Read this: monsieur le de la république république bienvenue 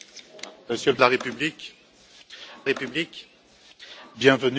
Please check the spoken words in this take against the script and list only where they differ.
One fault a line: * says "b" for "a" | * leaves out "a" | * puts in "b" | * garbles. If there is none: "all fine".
all fine